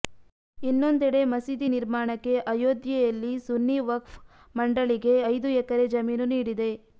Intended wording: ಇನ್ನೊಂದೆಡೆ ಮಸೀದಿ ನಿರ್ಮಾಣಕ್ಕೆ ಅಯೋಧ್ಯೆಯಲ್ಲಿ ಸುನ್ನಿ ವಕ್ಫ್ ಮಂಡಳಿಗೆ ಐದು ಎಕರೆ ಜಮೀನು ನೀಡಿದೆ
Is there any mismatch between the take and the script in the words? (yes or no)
no